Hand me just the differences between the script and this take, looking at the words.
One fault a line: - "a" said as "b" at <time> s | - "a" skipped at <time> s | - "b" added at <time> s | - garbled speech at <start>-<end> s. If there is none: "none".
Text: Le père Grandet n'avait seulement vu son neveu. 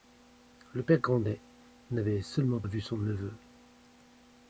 none